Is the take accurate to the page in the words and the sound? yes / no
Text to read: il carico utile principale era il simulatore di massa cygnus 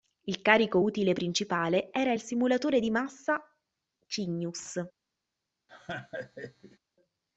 no